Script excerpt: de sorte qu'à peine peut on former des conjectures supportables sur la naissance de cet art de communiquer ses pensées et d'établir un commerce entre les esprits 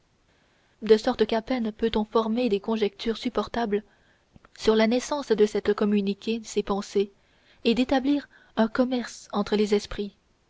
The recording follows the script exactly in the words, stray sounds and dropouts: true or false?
false